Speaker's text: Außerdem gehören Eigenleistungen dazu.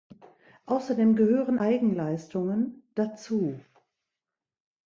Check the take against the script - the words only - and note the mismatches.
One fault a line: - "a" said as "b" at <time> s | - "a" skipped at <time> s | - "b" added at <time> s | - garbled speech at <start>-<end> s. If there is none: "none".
none